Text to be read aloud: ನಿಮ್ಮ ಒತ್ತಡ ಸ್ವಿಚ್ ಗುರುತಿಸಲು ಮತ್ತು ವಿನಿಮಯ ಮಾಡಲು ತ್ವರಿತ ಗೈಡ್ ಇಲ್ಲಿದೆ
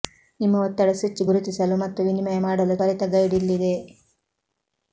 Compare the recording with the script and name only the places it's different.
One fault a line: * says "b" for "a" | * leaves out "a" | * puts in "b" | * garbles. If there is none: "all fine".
all fine